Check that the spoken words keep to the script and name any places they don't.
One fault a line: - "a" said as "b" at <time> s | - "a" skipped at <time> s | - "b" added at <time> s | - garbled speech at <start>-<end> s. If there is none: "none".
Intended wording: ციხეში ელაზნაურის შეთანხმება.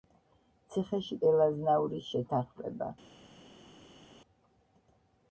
none